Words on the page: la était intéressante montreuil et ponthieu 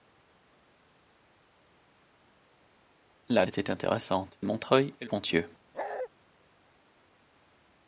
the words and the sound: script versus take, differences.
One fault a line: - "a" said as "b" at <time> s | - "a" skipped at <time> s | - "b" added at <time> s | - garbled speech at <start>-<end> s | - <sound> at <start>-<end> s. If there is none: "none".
- bark at 5.7-6.1 s